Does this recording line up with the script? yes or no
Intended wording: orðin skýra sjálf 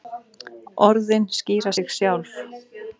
no